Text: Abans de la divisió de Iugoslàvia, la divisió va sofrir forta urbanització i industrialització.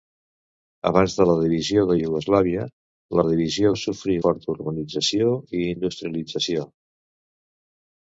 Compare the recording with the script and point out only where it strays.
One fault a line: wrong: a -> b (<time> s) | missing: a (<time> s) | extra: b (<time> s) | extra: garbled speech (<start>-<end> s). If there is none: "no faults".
no faults